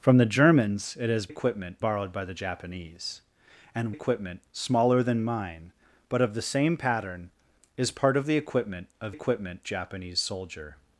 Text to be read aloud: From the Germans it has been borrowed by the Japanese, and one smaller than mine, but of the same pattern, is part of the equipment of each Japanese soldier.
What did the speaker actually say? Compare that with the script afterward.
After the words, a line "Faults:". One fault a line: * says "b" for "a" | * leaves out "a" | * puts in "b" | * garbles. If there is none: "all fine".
From the Germans it has equipment borrowed by the Japanese, and equipment smaller than mine, but of the same pattern, is part of the equipment of equipment Japanese soldier.
Faults:
* says "equipment" for "been"
* says "equipment" for "one"
* says "equipment" for "each"